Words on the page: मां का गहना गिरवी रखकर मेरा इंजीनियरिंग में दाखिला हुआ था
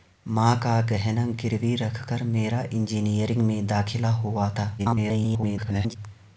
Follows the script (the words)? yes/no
no